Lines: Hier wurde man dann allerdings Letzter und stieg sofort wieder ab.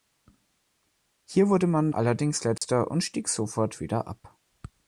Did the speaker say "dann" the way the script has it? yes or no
no